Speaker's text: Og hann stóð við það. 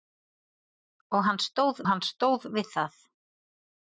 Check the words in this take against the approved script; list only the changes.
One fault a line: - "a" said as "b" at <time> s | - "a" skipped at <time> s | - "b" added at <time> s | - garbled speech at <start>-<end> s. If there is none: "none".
- "hann stóð" added at 1.9 s